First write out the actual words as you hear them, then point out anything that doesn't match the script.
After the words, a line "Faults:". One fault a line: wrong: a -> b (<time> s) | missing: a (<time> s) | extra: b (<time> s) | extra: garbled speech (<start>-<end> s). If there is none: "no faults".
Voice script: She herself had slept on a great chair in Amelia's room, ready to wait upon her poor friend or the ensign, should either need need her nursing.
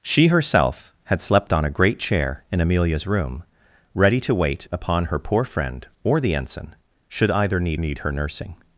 She herself had slept on a great chair in Amelia's room, ready to wait upon her poor friend or the ensign, should either need need her nursing.
Faults:
no faults